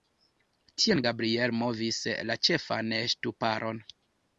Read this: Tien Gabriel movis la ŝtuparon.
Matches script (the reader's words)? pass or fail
fail